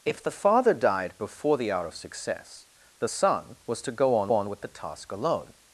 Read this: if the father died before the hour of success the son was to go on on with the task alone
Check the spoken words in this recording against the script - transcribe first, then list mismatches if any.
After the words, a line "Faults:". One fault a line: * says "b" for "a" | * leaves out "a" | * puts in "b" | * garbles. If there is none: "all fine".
if the father died before the hour of success the son was to go on on with the task alone
Faults:
all fine